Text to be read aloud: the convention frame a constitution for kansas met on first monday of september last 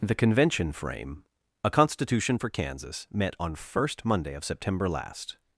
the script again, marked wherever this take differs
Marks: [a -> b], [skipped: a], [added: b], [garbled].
the convention frame a constitution for kansas met on first monday of september last